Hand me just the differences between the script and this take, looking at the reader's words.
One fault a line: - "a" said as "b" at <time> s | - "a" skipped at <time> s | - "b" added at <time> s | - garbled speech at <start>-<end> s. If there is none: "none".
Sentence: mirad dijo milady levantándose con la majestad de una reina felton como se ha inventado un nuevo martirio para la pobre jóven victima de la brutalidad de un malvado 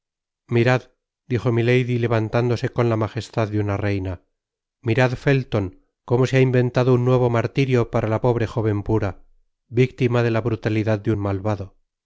- "mirad" added at 4.8 s
- "pura" added at 8.8 s